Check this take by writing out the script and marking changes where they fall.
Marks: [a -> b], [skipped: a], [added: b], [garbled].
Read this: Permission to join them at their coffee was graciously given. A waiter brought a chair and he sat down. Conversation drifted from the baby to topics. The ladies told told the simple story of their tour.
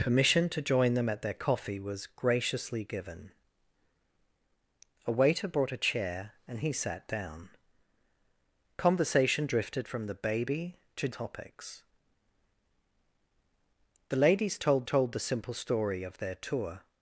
Permission to join them at their coffee was graciously given. A waiter brought a chair and he sat down. Conversation drifted from the baby to topics. The ladies told told the simple story of their tour.